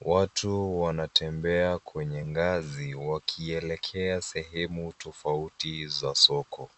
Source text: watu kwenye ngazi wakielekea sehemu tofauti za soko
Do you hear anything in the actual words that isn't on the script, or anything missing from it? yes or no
yes